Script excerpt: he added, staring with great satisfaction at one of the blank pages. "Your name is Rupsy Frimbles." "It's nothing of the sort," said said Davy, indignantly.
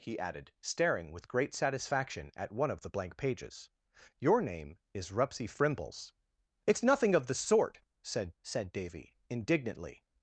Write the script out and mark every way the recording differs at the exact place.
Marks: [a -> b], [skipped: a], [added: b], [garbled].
he added, staring with great satisfaction at one of the blank pages. "Your name is Rupsy Frimbles." "It's nothing of the sort," said said Davy, indignantly.